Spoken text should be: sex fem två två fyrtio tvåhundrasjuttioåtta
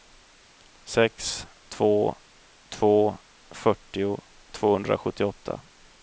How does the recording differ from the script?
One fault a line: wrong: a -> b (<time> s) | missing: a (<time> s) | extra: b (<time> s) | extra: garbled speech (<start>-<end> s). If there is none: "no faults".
missing: fem (1.5 s)